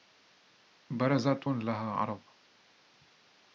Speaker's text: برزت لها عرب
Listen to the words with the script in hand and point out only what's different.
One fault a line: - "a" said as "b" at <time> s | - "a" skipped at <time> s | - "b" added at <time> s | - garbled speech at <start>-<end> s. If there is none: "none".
none